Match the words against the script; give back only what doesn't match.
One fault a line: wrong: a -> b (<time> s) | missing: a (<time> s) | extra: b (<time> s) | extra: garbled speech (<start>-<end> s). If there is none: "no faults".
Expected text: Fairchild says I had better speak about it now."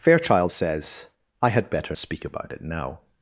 no faults